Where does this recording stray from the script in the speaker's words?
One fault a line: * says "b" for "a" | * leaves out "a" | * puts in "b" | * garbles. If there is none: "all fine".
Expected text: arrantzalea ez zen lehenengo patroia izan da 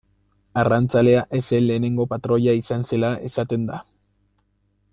* puts in "zela esaten"